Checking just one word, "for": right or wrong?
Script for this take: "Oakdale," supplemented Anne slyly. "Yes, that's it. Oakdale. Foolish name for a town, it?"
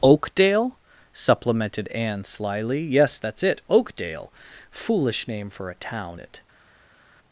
right